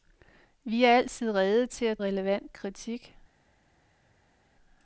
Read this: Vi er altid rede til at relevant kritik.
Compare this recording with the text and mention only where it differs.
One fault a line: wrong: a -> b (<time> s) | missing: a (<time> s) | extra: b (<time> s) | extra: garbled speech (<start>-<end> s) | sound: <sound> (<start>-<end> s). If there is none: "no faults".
no faults